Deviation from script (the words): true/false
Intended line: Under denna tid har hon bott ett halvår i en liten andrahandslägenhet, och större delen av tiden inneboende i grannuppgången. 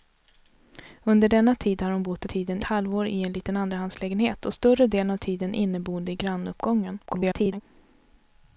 true